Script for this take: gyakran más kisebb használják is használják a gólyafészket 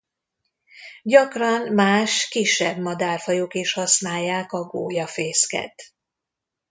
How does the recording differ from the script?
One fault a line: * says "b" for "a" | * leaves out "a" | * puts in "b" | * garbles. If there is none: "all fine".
* says "madárfajok" for "használják"